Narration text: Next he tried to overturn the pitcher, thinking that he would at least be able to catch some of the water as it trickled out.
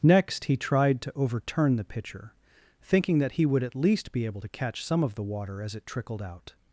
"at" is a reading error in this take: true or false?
false